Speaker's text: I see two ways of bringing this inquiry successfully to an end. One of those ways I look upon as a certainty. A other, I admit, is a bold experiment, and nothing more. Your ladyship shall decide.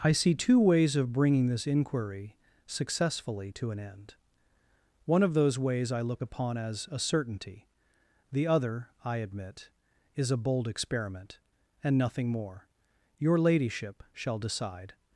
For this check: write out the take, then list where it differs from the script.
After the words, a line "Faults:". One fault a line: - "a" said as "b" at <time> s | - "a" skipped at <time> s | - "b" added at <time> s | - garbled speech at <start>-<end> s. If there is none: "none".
I see two ways of bringing this inquiry successfully to an end. One of those ways I look upon as a certainty. The other, I admit, is a bold experiment, and nothing more. Your ladyship shall decide.
Faults:
- "A" said as "The" at 8.3 s